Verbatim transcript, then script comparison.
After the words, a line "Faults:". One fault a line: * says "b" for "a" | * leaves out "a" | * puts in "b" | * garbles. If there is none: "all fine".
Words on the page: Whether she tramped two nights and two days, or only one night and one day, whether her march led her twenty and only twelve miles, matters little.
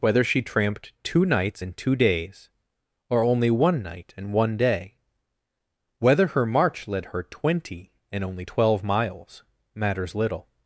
Whether she tramped two nights and two days, or only one night and one day, whether her march led her twenty and only twelve miles, matters little.
Faults:
all fine